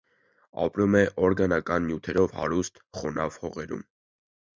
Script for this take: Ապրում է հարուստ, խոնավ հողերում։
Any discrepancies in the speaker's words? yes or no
yes